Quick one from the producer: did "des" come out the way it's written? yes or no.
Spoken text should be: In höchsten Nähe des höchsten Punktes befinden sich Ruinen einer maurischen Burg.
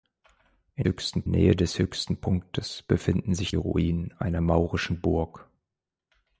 yes